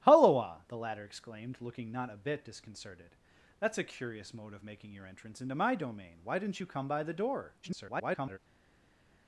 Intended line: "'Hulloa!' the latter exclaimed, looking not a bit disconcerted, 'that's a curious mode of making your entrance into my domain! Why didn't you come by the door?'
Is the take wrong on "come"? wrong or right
right